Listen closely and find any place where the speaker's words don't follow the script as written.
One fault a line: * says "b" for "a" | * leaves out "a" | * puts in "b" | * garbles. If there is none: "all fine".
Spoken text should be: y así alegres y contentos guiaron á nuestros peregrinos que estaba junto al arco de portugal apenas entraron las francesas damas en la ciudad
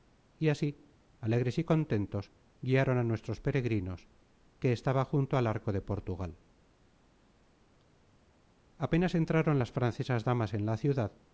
all fine